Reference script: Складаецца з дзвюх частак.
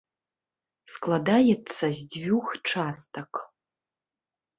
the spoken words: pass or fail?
pass